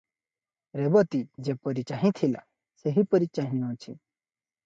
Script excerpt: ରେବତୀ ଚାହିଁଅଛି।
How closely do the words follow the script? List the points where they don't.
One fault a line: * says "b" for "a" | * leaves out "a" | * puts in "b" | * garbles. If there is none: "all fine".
* puts in "ଯେପରି ଚାହିଁଥିଲା ସେହିପରି"